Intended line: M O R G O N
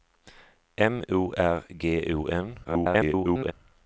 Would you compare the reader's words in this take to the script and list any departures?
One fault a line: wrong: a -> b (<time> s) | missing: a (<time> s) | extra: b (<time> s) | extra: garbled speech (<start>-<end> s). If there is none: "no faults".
extra: garbled speech (2.6-3.5 s)